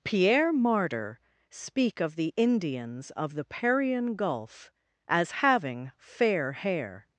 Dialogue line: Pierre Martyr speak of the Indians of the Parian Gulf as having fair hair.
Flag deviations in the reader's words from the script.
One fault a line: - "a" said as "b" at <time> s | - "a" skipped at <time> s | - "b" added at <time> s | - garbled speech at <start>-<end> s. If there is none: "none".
none